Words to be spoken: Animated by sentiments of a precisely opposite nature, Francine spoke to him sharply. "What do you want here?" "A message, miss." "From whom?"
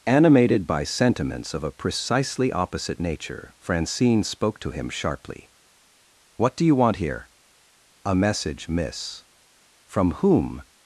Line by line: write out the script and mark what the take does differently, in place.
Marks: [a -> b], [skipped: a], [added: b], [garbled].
Animated by sentiments of a precisely opposite nature, Francine spoke to him sharply. "What do you want here?" "A message, miss." "From whom?"